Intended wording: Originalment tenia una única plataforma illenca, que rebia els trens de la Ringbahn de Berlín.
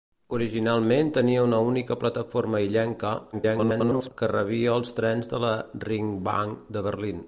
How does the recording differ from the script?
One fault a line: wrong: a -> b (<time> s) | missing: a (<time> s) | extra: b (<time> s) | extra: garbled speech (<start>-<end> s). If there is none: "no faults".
extra: garbled speech (3.3-4.1 s)